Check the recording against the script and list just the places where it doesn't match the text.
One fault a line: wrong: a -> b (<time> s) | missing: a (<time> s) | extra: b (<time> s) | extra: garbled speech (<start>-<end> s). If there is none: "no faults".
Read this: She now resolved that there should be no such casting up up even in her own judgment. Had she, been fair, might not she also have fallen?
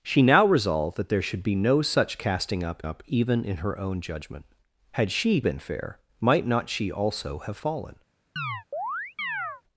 no faults